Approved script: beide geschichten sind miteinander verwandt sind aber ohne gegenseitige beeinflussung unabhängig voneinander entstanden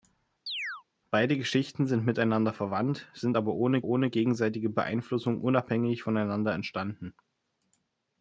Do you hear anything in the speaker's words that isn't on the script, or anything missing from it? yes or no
yes